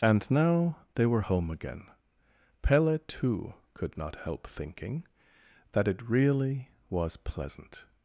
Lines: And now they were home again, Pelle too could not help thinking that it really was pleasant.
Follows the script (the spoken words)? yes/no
yes